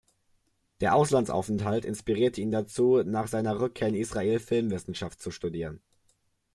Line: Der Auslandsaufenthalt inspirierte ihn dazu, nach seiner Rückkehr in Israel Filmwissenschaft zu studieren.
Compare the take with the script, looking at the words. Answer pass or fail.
pass